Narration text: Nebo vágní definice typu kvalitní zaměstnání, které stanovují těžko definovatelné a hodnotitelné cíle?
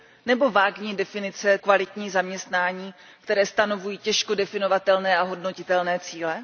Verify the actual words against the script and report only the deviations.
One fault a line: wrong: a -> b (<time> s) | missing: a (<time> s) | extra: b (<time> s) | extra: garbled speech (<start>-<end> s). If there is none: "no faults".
missing: typu (1.6 s)